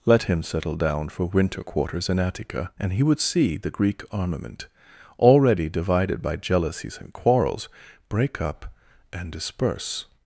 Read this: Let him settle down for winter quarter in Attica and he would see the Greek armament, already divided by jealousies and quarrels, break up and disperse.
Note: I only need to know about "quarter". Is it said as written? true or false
false